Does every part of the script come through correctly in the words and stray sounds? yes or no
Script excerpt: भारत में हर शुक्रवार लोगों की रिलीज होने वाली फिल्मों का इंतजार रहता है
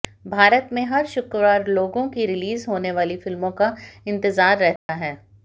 no